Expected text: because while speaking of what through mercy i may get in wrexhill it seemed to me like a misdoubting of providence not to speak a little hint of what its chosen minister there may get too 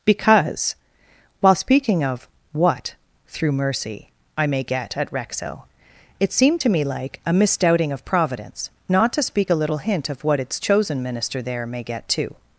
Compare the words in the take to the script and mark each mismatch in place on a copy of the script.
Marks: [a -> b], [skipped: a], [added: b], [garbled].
because while speaking of what through mercy i may get [in -> at] wrexhill it seemed to me like a misdoubting of providence not to speak a little hint of what its chosen minister there may get too